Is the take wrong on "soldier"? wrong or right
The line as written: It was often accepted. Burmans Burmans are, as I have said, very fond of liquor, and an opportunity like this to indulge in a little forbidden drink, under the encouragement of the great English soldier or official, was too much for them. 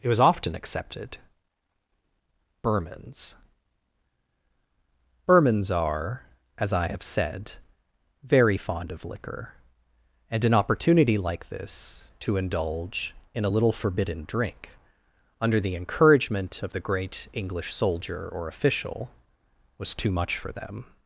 right